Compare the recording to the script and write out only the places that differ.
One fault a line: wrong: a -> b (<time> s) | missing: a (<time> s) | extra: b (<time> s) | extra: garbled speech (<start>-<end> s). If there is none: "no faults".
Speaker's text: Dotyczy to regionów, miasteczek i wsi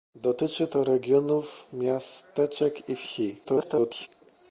extra: garbled speech (3.4-4.1 s)